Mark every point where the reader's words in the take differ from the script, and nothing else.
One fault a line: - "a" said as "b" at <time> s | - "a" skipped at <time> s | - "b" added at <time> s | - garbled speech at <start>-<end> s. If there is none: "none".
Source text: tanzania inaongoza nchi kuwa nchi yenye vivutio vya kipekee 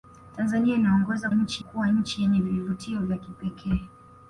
none